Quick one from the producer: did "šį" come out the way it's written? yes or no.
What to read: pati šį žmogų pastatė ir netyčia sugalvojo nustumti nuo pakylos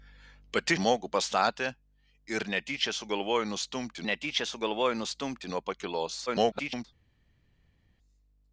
no